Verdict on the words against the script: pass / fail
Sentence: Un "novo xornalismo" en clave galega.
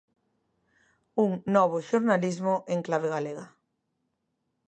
pass